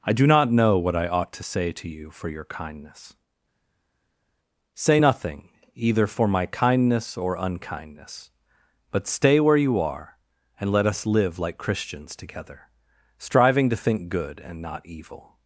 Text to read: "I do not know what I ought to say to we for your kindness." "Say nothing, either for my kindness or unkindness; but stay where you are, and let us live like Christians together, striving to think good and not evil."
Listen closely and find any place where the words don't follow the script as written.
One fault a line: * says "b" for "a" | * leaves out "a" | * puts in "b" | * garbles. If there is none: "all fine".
* says "you" for "we"